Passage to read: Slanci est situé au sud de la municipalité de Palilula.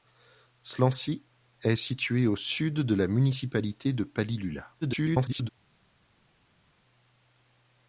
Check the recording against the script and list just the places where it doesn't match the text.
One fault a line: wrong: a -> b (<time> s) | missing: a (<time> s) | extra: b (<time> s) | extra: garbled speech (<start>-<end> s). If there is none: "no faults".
extra: garbled speech (4.8-5.5 s)